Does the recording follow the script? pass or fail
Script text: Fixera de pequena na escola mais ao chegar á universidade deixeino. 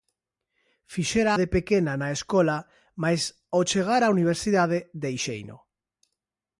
pass